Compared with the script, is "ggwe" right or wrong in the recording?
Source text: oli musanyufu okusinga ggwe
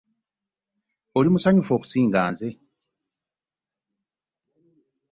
wrong